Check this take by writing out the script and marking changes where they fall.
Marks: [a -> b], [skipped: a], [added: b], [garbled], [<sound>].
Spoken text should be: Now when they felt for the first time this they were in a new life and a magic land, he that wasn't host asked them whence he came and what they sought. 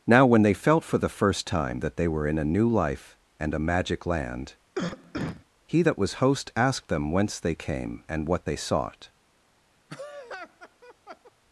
Now when they felt for the first time [this -> that] they were in a new life and a magic land, [cough] he that [wasn't -> was] host asked them whence [he -> they] came and what they sought. [laugh]